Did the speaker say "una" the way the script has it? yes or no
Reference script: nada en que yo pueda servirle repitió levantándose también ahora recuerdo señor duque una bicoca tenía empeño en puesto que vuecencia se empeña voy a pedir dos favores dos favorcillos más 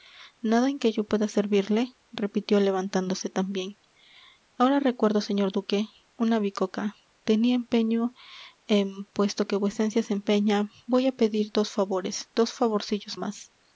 yes